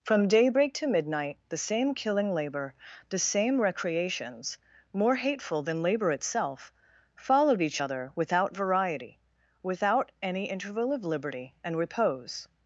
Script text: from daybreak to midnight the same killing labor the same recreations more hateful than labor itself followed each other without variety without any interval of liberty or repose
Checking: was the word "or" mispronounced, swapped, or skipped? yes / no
yes